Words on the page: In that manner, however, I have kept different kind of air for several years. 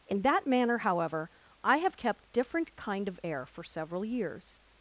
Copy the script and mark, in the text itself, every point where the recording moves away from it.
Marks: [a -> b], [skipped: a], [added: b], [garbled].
In that manner, however, I have kept different kind of air for several years.